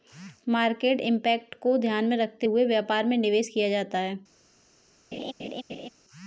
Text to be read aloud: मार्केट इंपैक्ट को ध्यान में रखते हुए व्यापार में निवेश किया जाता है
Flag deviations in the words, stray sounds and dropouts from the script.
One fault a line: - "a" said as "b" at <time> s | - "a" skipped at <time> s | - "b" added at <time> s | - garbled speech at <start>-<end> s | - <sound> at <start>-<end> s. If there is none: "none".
- laugh at 5.1-5.9 s